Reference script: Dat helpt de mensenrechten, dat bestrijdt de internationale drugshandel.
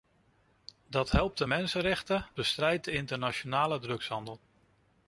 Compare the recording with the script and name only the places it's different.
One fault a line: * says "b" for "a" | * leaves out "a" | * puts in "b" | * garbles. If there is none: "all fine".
* leaves out "dat"